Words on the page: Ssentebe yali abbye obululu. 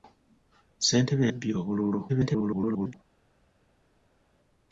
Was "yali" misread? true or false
true